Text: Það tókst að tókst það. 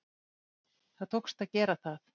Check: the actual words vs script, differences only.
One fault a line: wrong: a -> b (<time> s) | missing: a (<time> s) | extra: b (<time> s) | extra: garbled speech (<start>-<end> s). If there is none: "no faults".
wrong: tókst -> gera (1.6 s)